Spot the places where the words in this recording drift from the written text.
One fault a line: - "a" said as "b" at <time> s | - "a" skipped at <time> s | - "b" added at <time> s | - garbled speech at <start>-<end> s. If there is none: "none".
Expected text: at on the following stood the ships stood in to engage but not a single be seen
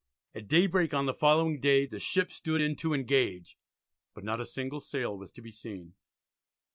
- "daybreak" added at 0.5 s
- "stood" said as "day" at 1.6 s
- "sail was to" added at 4.8 s